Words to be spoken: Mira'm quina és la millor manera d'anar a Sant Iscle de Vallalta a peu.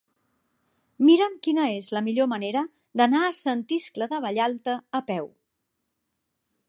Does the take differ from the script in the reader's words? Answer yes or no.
no